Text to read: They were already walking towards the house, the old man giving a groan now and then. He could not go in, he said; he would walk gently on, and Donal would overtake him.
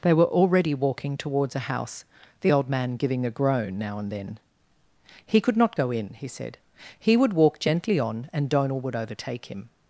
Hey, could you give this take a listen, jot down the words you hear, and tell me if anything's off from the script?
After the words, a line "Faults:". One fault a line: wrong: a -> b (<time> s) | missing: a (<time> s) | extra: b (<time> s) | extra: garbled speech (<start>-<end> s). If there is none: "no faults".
They were already walking towards a house, the old man giving a groan now and then. He could not go in, he said; he would walk gently on, and Donal would overtake him.
Faults:
wrong: the -> a (1.6 s)